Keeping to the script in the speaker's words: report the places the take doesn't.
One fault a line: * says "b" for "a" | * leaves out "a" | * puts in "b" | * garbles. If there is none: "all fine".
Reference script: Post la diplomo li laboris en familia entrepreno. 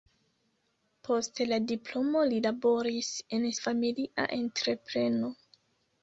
all fine